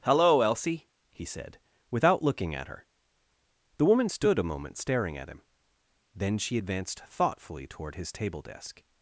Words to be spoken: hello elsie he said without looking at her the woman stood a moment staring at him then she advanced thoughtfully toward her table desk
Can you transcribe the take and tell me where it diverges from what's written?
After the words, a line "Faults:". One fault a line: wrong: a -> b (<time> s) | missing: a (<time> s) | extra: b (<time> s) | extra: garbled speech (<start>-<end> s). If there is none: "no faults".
hello elsie he said without looking at her the woman stood a moment staring at him then she advanced thoughtfully toward his table desk
Faults:
wrong: her -> his (8.0 s)